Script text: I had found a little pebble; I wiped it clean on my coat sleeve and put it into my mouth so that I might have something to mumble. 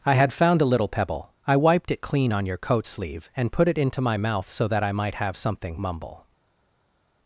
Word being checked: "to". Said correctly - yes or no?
no